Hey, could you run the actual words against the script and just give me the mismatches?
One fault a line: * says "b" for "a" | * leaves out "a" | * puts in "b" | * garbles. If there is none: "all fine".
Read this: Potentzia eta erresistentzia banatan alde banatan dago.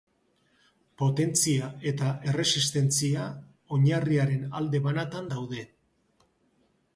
* says "oinarriaren" for "banatan"
* says "daude" for "dago"